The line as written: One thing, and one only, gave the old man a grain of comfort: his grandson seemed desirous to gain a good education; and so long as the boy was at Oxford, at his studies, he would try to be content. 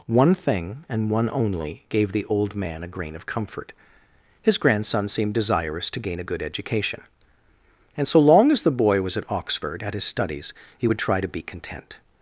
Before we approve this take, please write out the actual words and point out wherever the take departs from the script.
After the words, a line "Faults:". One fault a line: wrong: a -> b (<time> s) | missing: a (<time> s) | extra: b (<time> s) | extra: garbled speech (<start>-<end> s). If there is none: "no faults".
One thing, and one only, gave the old man a grain of comfort: his grandson seemed desirous to gain a good education; and so long as the boy was at Oxford, at his studies, he would try to be content.
Faults:
no faults